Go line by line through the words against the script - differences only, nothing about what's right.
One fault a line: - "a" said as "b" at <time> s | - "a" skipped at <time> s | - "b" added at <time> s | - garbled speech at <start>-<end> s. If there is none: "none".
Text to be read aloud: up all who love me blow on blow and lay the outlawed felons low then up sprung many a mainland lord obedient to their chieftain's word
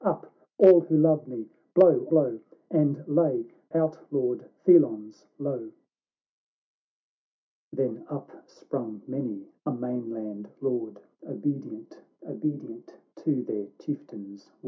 - "on" skipped at 2.1 s
- "the" skipped at 3.5 s
- "obedient" added at 12.2 s